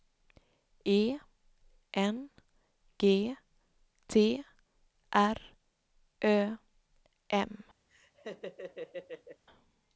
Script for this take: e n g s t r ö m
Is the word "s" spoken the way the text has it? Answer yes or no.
no